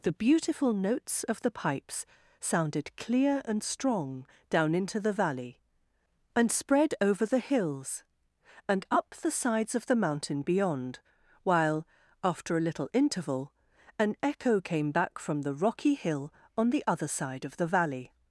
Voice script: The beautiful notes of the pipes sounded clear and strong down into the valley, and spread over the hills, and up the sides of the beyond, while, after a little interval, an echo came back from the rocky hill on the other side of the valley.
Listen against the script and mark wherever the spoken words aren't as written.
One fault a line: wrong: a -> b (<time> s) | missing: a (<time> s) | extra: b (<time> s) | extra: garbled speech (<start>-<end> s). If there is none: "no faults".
extra: mountain (9.9 s)